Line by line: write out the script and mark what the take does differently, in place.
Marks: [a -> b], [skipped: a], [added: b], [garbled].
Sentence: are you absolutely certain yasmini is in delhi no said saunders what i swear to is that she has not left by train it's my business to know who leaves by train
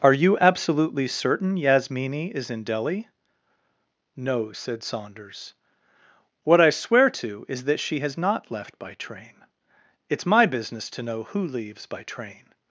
are you absolutely certain yasmini is in delhi no said saunders what i swear to is that she has not left by train it's my business to know who leaves by train